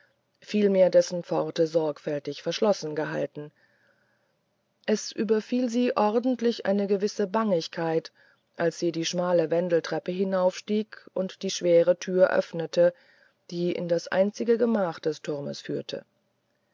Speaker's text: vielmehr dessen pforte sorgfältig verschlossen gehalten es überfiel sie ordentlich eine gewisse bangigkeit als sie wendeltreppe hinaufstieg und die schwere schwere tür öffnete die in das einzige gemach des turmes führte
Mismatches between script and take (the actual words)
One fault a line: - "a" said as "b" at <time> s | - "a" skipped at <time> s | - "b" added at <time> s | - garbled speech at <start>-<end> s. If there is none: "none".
- "die schmale" added at 8.9 s
- "schwere" skipped at 12.0 s